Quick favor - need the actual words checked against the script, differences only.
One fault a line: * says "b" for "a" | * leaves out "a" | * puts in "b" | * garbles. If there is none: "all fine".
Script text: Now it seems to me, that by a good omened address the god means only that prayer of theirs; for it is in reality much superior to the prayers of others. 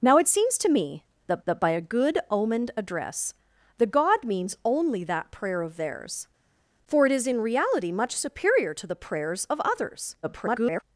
* puts in "that"
* garbles